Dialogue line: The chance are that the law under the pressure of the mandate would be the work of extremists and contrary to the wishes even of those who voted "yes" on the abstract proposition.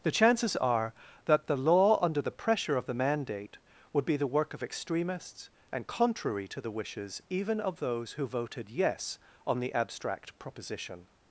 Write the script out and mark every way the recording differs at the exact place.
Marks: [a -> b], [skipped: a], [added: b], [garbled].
The [chance -> chances] are that the law under the pressure of the mandate would be the work of extremists and contrary to the wishes even of those who voted "yes" on the abstract proposition.